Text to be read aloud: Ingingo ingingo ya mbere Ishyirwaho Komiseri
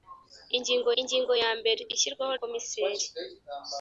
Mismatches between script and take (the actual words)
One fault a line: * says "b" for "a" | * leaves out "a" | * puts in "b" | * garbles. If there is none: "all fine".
all fine